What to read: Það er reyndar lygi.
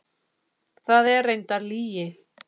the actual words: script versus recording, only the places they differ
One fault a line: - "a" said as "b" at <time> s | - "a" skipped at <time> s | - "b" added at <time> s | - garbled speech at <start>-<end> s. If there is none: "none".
none